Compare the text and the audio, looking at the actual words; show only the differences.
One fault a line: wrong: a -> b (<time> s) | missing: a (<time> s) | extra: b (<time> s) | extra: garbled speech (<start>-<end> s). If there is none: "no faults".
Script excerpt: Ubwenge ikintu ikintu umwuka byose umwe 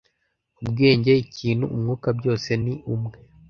missing: ikintu (1.6 s)
extra: ni (2.6 s)